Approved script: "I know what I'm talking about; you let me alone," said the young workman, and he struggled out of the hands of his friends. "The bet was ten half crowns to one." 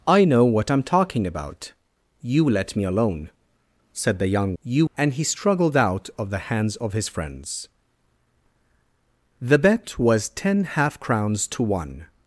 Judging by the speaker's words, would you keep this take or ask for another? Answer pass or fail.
fail